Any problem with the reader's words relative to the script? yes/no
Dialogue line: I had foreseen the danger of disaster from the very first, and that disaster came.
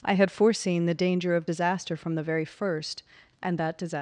yes